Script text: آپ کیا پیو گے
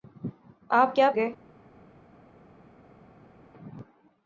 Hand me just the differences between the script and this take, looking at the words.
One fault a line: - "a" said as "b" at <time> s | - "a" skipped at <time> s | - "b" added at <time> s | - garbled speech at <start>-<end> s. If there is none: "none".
- "پیو" skipped at 1.1 s